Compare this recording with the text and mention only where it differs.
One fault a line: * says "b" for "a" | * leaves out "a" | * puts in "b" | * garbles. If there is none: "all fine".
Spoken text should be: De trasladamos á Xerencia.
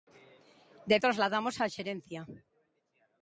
all fine